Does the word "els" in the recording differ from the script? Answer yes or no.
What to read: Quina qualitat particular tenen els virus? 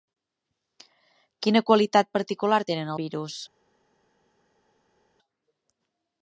yes